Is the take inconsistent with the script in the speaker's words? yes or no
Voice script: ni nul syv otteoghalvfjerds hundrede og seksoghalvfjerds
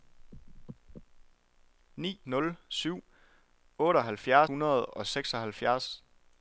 no